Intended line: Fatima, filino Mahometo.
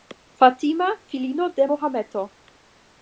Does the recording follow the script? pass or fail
fail